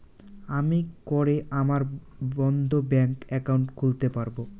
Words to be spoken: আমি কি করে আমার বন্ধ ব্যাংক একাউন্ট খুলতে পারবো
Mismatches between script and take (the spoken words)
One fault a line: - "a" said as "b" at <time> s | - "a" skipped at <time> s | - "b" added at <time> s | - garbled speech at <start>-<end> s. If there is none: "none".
- "কি" skipped at 0.9 s